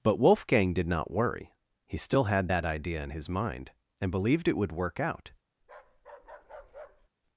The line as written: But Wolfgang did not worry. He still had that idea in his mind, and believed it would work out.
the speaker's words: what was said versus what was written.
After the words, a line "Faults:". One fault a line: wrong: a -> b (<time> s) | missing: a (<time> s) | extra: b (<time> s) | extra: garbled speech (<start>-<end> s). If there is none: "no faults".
But Wolfgang did not worry. He still had that idea in his mind, and believed it would work out.
Faults:
no faults